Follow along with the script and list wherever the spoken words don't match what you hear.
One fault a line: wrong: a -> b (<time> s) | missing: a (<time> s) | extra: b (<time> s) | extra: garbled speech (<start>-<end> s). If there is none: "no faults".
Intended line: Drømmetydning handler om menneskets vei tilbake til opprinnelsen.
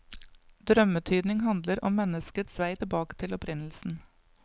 no faults